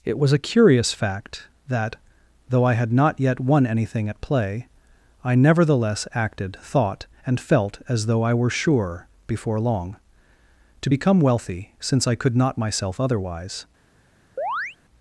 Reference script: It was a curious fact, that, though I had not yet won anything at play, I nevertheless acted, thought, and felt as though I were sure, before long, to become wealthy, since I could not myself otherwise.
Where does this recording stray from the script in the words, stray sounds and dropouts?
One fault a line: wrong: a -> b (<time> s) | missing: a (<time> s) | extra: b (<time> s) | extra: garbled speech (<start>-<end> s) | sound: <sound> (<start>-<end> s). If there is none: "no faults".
sound: chirp (14.4-14.8 s)